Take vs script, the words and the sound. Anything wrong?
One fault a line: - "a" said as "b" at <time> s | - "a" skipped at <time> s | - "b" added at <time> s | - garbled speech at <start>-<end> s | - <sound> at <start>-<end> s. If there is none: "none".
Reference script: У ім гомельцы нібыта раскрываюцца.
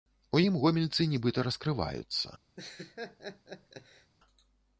- laugh at 2.6-4.1 s